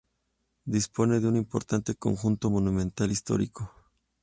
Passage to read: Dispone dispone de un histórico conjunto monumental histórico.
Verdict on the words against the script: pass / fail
fail